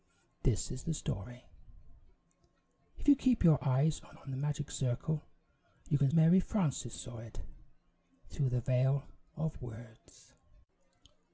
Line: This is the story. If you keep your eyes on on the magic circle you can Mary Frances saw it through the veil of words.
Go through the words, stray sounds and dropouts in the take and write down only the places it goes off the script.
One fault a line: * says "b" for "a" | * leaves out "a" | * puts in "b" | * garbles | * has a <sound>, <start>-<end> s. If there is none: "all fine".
all fine